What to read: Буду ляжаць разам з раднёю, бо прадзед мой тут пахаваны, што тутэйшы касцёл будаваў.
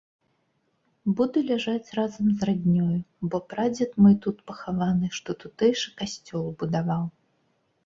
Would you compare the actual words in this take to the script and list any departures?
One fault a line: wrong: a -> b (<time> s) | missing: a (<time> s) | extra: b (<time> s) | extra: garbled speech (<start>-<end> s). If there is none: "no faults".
no faults